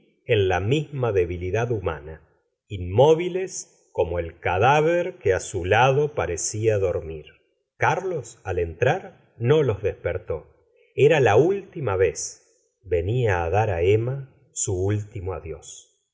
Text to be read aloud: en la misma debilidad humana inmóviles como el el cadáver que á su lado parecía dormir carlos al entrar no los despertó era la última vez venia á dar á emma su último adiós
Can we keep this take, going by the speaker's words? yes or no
no